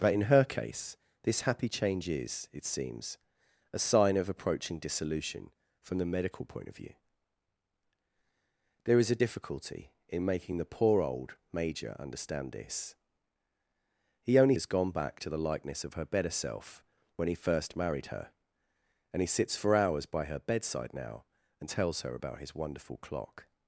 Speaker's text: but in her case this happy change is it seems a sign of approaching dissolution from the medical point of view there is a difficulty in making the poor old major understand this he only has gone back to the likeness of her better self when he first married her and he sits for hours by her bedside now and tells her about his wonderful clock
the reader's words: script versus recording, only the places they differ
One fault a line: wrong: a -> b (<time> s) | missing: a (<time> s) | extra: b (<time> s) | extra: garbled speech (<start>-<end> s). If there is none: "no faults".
no faults